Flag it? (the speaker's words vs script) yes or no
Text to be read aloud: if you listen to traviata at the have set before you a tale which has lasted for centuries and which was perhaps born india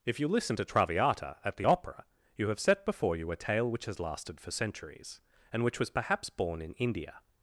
yes